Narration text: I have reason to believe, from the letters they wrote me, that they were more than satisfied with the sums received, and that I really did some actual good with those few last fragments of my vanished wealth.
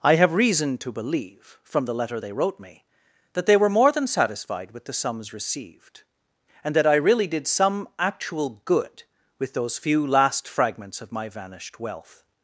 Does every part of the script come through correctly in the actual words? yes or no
no